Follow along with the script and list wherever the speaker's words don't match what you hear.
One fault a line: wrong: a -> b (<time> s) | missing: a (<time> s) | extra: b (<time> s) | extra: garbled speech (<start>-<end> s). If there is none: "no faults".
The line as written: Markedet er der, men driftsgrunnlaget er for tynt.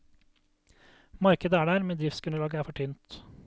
no faults